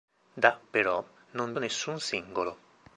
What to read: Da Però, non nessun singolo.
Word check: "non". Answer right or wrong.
right